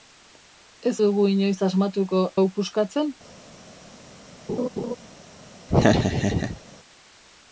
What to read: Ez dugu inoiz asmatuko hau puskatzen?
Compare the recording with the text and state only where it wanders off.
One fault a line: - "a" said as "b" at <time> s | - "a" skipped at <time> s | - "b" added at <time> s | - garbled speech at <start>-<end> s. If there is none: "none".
none